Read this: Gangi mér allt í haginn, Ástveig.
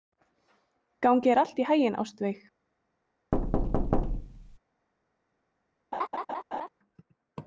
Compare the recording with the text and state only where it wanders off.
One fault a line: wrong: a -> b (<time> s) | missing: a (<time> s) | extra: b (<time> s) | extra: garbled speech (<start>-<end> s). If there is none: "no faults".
wrong: mér -> þér (1.3 s)